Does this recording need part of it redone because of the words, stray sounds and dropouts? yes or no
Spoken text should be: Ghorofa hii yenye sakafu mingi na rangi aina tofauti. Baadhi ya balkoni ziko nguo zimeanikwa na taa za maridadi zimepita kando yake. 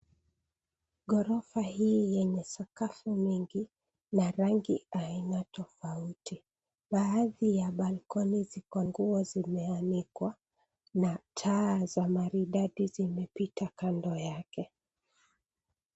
no